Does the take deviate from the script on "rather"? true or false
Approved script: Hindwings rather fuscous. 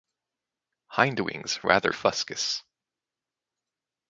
false